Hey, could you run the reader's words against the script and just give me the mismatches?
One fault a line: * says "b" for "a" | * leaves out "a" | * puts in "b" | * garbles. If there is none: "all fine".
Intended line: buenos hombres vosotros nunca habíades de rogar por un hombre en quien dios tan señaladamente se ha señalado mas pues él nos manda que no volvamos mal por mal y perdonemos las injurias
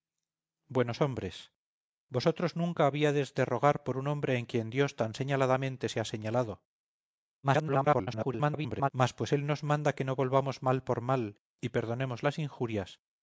* garbles